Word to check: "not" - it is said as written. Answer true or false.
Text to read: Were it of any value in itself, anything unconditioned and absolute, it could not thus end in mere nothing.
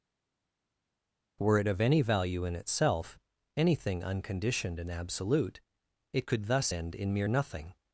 false